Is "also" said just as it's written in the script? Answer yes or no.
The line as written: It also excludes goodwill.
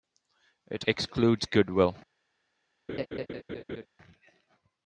no